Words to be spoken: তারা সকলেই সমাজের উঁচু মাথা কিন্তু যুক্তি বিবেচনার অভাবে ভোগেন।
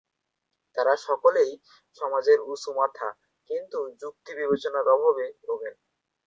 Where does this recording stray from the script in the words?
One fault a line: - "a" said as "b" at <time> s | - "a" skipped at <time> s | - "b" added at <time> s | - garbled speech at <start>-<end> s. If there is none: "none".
none